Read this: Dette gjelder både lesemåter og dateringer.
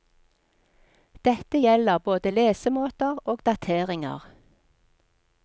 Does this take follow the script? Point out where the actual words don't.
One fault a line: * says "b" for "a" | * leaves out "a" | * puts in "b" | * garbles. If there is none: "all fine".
all fine